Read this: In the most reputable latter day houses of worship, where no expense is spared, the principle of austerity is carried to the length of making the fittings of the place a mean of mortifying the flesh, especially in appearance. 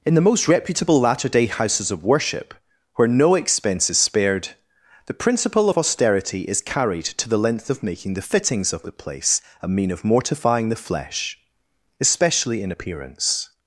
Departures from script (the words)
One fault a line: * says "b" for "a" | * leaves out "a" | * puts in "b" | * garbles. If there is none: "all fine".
all fine